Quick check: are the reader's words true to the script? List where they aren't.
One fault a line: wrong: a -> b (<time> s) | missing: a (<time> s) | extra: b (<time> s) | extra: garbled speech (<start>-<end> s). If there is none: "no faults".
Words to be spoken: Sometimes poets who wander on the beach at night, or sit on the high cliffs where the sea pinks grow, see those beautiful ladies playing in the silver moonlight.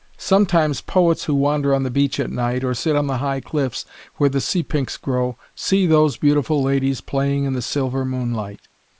no faults